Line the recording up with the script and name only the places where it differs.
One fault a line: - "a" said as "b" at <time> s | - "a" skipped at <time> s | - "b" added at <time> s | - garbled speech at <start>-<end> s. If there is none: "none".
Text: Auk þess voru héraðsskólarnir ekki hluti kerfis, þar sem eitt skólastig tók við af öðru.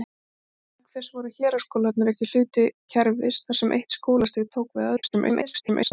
- garbled speech at 5.0-5.9 s